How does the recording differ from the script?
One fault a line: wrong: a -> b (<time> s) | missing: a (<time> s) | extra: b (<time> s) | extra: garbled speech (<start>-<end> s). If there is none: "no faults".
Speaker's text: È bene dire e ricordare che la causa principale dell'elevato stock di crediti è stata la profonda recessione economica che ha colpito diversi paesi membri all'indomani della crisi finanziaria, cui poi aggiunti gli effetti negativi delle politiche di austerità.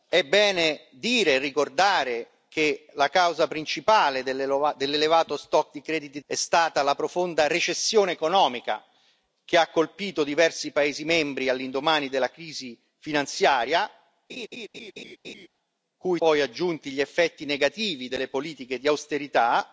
no faults